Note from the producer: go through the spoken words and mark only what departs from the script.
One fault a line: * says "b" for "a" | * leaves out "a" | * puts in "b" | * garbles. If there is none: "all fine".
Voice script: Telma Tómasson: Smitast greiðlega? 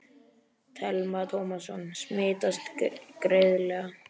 all fine